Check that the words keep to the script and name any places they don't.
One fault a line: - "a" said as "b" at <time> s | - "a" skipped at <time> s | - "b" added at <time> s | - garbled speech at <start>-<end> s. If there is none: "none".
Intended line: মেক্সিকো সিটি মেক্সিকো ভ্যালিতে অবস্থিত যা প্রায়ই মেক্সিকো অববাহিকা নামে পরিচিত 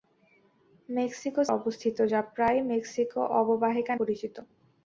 - "সিটি মেক্সিকো ভ্যালিতে" skipped at 1.4 s
- "নামে" skipped at 3.9 s